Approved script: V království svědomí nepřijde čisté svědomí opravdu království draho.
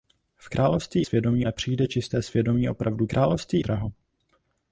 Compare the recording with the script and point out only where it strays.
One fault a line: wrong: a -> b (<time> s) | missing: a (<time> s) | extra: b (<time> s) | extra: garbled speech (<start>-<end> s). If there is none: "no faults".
no faults